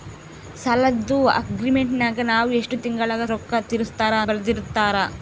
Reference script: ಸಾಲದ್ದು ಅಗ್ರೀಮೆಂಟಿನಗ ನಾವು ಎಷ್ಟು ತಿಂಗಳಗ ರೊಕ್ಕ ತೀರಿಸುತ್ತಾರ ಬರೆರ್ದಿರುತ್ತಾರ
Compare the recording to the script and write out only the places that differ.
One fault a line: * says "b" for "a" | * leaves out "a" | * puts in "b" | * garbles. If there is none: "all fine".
all fine